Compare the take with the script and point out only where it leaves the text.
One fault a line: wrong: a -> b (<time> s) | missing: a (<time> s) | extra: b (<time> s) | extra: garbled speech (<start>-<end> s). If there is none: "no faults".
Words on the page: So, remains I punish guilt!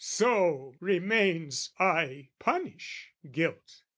no faults